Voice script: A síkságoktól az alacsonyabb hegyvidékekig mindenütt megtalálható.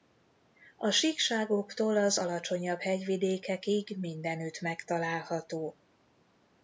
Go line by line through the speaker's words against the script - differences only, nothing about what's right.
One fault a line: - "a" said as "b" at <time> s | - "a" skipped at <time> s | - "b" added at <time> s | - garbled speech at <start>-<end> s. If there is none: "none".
none